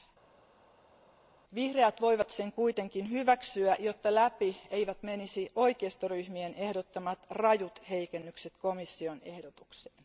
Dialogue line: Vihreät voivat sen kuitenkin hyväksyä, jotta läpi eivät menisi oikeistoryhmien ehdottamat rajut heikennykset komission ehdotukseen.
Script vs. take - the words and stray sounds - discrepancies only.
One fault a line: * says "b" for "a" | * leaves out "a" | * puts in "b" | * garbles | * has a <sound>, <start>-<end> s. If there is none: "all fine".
all fine